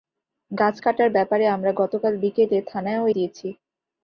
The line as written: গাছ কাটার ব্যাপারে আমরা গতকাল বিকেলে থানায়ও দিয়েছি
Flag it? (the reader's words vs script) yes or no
no